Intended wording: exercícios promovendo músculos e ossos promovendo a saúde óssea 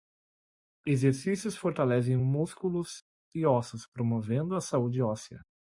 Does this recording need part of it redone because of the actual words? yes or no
yes